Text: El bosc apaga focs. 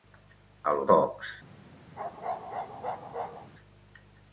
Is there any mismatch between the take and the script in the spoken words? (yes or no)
yes